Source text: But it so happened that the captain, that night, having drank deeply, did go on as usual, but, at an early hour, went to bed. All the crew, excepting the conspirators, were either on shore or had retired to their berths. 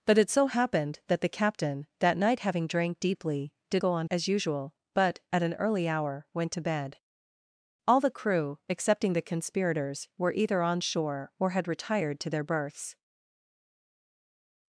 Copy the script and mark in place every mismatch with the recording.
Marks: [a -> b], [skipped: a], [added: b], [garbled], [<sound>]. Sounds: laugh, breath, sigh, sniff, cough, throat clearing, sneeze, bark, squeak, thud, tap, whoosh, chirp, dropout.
But it so happened that the captain, that night, having drank deeply, did go on as usual, but, at an early hour, went to bed. All the crew, excepting the conspirators, were either on shore or had retired to their berths.